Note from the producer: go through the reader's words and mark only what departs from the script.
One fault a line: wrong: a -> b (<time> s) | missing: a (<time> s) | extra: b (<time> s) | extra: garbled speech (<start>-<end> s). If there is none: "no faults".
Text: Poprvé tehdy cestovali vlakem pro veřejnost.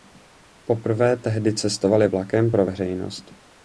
no faults